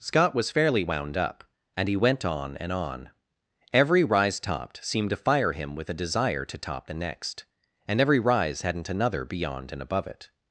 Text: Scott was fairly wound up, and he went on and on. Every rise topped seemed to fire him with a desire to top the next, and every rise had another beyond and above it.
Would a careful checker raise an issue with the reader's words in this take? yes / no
yes